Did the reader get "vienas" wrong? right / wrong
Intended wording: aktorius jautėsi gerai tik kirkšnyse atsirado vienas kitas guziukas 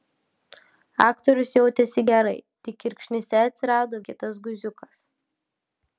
wrong